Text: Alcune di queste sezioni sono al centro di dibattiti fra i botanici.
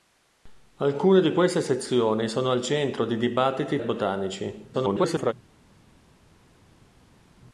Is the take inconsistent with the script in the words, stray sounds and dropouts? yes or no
yes